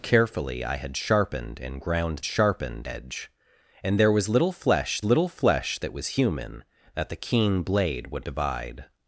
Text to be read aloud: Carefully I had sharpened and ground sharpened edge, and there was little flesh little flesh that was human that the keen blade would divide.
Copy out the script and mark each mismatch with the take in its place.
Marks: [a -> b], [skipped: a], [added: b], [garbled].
Carefully I had sharpened and ground sharpened edge, and there was little flesh little flesh that was human that the keen blade would divide.